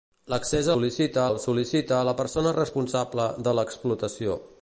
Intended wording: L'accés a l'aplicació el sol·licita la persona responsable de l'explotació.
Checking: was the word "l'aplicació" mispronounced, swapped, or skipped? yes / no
yes